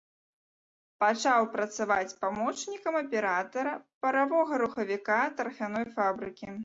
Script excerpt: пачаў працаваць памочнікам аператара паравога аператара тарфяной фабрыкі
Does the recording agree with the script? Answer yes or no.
no